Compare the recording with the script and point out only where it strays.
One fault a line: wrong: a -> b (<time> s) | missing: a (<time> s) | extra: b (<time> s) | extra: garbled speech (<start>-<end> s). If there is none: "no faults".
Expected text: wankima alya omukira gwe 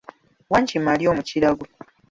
no faults